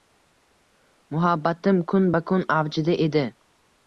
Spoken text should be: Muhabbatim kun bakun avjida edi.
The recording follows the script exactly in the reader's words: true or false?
true